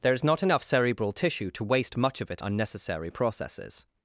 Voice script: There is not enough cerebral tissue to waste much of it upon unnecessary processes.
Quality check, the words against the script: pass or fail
fail